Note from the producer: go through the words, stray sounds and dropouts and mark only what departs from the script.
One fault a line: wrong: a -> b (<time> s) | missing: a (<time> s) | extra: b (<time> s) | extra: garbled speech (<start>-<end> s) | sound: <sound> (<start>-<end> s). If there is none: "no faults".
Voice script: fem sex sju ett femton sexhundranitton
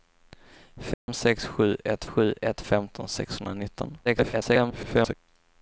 sound: dropout (0.9-1.1 s)
extra: sju ett (2.0 s)
extra: garbled speech (4.1-5.1 s)